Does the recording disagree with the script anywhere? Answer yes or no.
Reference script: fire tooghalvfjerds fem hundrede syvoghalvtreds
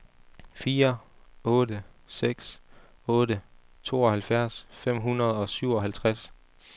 yes